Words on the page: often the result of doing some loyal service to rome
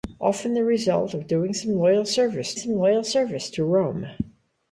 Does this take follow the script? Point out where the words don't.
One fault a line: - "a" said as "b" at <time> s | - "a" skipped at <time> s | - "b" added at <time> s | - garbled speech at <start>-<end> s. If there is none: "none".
- "some loyal service" added at 2.5 s